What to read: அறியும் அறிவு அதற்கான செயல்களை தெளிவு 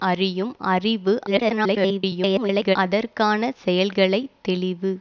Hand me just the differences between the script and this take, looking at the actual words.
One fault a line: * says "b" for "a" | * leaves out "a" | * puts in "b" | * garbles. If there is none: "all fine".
* garbles